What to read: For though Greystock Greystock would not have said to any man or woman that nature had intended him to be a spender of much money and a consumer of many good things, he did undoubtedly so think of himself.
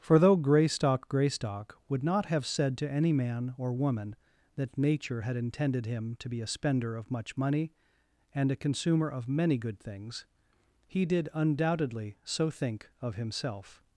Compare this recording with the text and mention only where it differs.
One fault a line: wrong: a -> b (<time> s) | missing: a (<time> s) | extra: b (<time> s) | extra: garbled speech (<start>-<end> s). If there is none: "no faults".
no faults